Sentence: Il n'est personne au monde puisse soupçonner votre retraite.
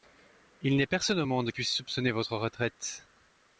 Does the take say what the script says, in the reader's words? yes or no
yes